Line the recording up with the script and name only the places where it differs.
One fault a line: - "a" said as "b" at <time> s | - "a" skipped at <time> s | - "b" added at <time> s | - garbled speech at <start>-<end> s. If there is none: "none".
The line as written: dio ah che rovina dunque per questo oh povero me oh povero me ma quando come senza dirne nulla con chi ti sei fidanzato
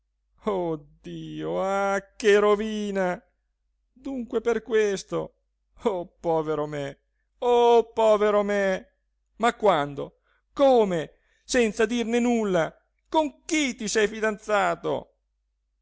none